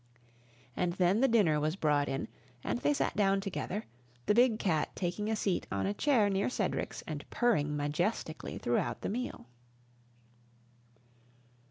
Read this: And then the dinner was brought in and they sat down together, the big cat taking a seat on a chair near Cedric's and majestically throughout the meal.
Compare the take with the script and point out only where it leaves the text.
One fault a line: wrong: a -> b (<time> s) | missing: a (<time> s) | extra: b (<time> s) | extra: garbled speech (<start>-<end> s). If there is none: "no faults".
extra: purring (7.3 s)